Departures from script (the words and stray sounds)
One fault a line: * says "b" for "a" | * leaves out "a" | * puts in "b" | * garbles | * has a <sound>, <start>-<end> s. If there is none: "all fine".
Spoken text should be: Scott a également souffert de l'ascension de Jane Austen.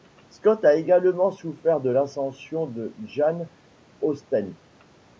all fine